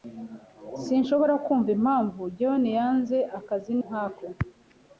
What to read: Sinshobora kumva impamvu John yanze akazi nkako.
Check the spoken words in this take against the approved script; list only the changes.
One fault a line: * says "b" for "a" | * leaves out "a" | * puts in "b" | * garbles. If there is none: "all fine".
all fine